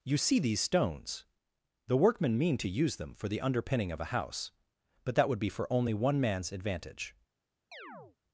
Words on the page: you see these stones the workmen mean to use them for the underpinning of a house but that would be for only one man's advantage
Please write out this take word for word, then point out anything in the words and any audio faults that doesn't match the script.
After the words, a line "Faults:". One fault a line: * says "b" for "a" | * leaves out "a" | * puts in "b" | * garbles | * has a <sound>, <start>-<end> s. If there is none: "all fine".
you see these stones the workmen mean to use them for the underpinning of a house but that would be for only one man's advantage
Faults:
* has a chirp, 7.7-8.2 s